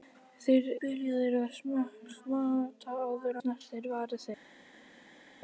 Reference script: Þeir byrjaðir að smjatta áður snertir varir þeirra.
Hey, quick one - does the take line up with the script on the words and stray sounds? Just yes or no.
yes